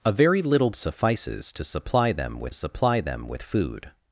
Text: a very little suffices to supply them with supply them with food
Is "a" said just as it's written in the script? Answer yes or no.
yes